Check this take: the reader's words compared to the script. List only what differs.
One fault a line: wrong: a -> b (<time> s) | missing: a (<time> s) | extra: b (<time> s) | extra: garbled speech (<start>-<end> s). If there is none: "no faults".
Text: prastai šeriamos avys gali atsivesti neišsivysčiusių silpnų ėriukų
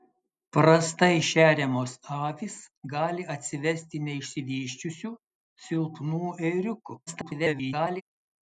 extra: garbled speech (7.1-8.0 s)